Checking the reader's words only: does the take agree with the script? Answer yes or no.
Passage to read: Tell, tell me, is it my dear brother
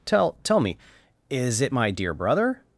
yes